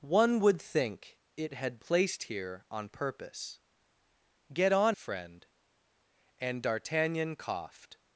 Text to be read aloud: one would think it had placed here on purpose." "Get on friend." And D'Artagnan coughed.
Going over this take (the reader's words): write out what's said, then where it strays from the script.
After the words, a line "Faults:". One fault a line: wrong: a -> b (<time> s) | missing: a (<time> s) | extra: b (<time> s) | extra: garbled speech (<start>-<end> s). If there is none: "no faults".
one would think it had placed here on purpose." "Get on friend." And D'Artagnan coughed.
Faults:
no faults